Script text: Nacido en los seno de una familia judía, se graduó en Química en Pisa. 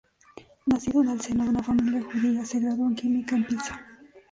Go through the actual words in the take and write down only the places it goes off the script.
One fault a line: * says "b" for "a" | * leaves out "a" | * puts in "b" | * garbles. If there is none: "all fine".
* says "el" for "los"